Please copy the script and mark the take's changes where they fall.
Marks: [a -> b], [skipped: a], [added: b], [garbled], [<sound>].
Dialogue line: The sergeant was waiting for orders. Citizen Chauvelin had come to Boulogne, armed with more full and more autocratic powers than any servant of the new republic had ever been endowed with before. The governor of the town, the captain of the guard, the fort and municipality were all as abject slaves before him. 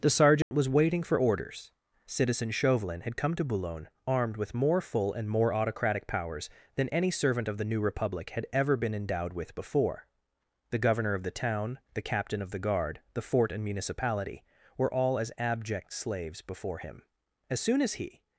The sergeant [dropout] was waiting for orders. Citizen Chauvelin had come to Boulogne, armed with more full and more autocratic powers than any servant of the new republic had ever been endowed with before. The governor of the town, the captain of the guard, the fort and municipality were all as abject slaves before him. [added: As soon as he]